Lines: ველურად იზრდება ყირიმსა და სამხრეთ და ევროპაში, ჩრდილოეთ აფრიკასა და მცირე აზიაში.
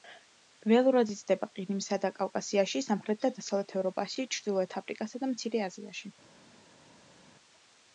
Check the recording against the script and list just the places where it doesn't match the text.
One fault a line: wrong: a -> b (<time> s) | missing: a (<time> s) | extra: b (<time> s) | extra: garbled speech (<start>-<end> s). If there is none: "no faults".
extra: კავკასიაში (2.1 s)
extra: დასავლეთ (3.4 s)